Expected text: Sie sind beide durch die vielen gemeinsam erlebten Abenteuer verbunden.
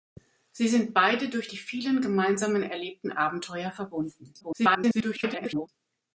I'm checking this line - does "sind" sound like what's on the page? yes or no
yes